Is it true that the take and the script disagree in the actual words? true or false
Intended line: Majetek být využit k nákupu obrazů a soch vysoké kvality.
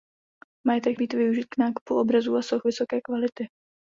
false